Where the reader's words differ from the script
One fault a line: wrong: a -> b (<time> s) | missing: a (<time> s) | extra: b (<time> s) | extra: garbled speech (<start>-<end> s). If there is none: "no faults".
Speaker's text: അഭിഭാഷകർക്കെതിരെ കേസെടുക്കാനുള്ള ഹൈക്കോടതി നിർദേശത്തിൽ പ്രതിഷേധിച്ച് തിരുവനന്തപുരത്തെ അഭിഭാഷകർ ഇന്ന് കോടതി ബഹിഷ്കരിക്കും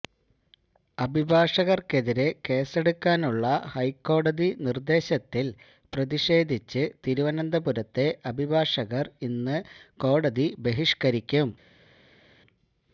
no faults